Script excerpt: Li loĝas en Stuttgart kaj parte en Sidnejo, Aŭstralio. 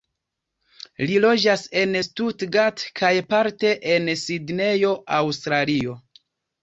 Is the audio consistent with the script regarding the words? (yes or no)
yes